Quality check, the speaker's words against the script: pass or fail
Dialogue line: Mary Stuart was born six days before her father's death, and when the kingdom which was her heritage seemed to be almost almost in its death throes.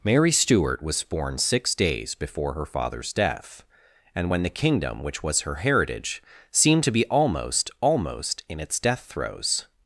pass